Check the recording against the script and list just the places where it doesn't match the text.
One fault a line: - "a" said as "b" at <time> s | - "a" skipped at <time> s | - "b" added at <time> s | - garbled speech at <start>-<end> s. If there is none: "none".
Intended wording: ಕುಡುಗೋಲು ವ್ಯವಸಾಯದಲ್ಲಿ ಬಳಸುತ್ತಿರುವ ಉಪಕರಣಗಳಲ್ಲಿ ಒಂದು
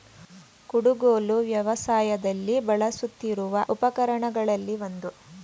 none